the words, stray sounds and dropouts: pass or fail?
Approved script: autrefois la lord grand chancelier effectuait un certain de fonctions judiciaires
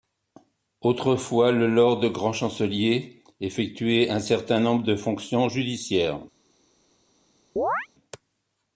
fail